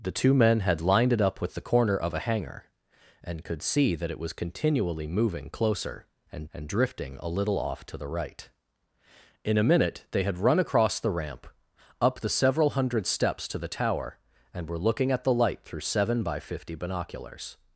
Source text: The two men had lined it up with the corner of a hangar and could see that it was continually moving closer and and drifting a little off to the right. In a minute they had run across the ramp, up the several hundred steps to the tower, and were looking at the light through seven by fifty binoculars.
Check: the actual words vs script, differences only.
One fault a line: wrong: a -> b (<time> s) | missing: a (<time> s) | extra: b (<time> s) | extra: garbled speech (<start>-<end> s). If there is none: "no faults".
no faults